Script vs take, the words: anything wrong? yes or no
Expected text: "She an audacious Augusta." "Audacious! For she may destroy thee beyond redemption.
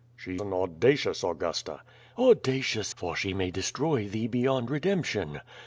no